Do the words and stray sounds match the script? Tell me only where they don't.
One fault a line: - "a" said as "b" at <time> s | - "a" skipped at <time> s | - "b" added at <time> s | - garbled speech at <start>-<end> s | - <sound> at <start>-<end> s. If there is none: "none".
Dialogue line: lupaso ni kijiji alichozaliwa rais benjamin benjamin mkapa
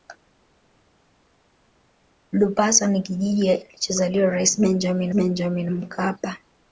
none